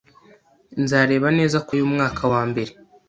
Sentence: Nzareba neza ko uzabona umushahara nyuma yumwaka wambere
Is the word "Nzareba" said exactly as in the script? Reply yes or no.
yes